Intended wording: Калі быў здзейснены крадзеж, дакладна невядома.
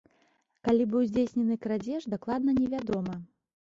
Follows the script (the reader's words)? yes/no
yes